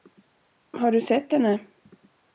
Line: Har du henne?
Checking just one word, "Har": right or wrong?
right